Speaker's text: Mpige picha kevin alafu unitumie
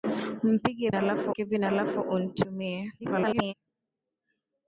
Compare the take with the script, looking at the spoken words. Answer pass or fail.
fail